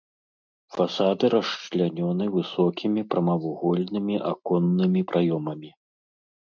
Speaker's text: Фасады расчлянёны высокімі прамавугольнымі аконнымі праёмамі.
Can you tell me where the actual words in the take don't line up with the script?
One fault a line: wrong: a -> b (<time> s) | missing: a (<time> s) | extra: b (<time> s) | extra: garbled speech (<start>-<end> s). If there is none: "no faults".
no faults